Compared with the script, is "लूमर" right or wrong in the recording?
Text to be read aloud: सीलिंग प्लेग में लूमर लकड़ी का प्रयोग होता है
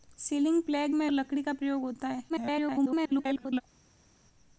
wrong